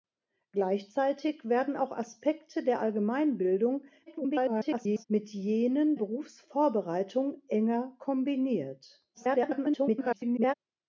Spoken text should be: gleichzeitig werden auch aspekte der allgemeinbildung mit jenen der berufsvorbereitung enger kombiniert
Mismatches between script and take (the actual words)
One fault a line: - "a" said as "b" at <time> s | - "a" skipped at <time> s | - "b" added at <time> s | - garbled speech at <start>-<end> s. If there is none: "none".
- garbled speech at 4.1-5.1 s
- "der" skipped at 6.0 s
- garbled speech at 9.1-10.5 s